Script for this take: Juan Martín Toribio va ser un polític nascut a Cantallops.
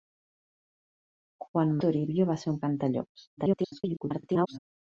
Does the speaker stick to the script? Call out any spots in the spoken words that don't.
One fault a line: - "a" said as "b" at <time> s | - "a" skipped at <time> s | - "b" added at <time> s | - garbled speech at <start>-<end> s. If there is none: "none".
- "Martín" skipped at 1.8 s
- "polític nascut" skipped at 2.6 s
- garbled speech at 3.4-4.6 s